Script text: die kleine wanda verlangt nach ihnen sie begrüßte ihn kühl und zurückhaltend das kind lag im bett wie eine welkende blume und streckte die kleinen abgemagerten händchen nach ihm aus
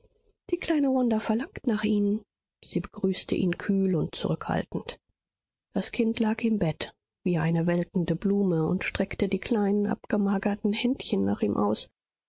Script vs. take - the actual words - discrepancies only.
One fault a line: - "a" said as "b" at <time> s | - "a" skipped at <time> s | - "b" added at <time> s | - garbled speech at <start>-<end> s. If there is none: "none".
none